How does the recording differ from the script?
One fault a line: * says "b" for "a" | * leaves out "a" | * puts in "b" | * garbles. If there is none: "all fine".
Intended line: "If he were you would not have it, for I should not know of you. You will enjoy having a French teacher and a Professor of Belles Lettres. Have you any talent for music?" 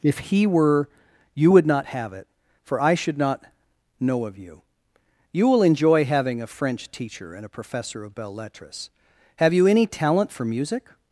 all fine